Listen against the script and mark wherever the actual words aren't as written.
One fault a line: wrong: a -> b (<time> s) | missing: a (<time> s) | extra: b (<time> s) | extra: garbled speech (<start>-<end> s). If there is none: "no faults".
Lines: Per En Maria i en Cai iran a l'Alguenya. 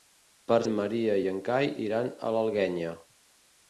no faults